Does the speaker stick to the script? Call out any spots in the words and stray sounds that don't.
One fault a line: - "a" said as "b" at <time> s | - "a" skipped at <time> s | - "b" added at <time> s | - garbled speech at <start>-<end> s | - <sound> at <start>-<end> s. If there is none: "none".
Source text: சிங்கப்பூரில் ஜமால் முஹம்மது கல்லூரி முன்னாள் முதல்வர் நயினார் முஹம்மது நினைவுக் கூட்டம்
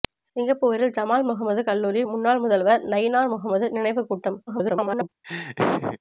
- garbled speech at 4.5-5.1 s
- laugh at 5.2-6.0 s